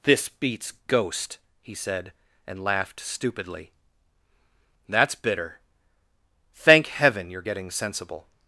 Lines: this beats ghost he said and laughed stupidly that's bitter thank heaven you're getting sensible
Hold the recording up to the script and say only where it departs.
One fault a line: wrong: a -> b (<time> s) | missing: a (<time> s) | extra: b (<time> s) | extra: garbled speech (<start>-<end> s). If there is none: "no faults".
no faults